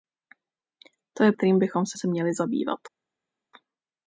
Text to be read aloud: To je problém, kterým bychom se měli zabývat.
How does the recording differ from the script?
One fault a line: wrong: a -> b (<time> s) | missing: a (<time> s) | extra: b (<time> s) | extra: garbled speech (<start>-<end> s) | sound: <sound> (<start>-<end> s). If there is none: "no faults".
missing: problém (1.3 s)
extra: se (2.0 s)